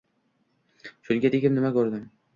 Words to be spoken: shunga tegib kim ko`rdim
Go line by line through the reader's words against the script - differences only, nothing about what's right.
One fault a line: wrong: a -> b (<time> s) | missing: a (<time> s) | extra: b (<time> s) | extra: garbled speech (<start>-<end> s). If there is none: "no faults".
wrong: kim -> nima (1.6 s)